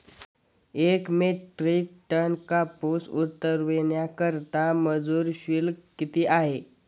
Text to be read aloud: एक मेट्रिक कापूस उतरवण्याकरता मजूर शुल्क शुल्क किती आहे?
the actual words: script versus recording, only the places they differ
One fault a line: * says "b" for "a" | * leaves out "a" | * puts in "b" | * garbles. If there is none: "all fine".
* puts in "टन"
* leaves out "शुल्क"